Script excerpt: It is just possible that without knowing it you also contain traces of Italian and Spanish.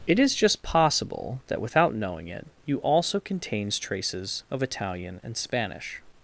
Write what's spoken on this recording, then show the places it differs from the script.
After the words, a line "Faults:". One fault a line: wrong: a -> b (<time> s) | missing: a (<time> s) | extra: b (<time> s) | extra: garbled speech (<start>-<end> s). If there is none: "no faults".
It is just possible that without knowing it you also contains traces of Italian and Spanish.
Faults:
wrong: contain -> contains (3.2 s)